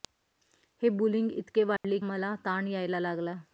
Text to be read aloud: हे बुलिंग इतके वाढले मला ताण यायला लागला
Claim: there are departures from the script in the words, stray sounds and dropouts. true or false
true